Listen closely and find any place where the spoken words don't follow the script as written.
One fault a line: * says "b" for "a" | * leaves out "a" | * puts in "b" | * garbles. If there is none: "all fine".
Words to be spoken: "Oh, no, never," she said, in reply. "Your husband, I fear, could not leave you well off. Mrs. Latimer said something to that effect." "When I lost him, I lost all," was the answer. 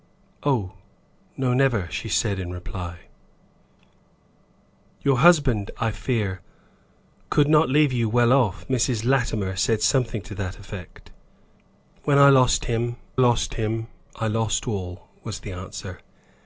* puts in "lost him"